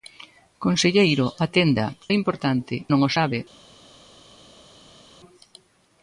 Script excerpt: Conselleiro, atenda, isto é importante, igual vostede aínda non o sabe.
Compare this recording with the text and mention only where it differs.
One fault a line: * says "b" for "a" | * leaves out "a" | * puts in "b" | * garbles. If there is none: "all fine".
* leaves out "isto"
* leaves out "igual vostede aínda"